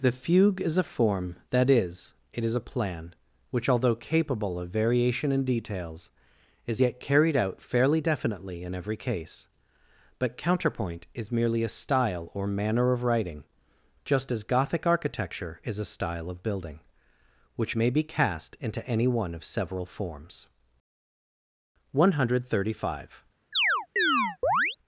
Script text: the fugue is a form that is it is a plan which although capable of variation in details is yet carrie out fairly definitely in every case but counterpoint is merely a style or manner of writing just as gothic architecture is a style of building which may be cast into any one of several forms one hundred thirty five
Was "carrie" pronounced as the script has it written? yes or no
no